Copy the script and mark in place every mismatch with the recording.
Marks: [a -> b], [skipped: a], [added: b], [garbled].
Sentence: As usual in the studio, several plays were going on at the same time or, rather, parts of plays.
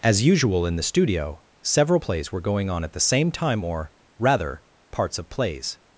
As usual in the studio, several plays were going on at the same time or, rather, parts of plays.